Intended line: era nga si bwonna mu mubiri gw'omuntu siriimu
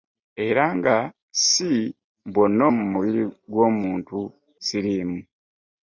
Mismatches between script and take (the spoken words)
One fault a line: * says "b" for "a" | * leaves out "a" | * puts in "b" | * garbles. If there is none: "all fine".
all fine